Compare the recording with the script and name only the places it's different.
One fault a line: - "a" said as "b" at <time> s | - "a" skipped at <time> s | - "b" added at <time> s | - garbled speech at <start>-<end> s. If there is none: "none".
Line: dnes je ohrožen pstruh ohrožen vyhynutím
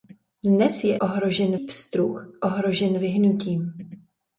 none